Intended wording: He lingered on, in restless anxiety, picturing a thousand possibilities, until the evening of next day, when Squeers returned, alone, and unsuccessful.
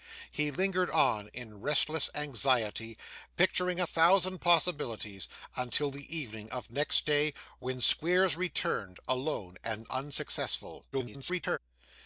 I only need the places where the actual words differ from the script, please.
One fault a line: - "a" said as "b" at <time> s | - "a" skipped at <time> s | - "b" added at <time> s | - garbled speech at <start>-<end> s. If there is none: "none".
- garbled speech at 10.9-11.6 s